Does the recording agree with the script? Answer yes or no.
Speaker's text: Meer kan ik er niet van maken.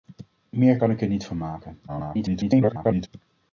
no